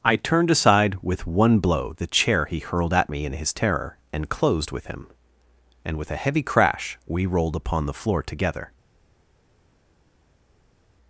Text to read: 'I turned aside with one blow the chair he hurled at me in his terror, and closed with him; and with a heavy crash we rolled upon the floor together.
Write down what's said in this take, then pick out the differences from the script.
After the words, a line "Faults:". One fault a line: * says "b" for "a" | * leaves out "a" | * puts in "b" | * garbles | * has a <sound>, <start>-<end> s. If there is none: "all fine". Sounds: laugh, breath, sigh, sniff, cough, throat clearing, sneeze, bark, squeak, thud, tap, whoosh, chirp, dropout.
'I turned aside with one blow the chair he hurled at me in his terror, and closed with him; and with a heavy crash we rolled upon the floor together.
Faults:
all fine